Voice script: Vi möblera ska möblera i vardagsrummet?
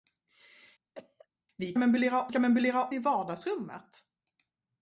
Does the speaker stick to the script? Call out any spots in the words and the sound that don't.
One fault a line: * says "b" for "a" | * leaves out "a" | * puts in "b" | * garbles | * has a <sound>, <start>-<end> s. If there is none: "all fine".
* has a cough, 0.9-1.3 s